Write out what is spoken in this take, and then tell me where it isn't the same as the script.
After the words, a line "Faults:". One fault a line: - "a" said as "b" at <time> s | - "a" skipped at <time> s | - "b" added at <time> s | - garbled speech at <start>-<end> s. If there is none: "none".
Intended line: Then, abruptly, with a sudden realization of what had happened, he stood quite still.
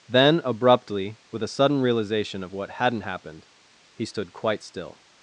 Then, abruptly, with a sudden realization of what hadn't happened, he stood quite still.
Faults:
- "had" said as "hadn't" at 2.7 s